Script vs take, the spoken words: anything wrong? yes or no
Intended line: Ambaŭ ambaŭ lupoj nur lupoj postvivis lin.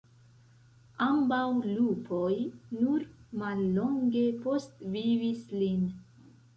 yes